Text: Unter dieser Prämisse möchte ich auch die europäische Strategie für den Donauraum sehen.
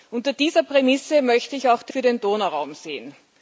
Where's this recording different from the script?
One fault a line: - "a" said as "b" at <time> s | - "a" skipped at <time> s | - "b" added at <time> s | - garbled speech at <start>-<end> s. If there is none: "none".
- "europäische Strategie" skipped at 1.9 s